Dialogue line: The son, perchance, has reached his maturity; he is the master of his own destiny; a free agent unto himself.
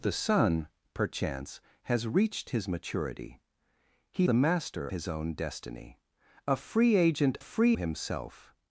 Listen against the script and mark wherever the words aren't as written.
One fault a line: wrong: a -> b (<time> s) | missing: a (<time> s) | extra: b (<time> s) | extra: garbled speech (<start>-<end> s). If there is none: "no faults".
missing: is (4.3 s)
missing: of (4.9 s)
wrong: unto -> free (7.4 s)